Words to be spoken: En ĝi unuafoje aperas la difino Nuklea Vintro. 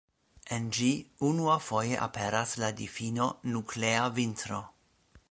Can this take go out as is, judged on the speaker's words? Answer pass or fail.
pass